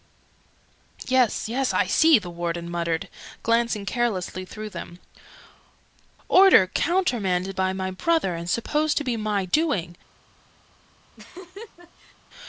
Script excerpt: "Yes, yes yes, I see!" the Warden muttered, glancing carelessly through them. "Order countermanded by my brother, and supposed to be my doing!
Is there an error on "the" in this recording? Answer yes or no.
no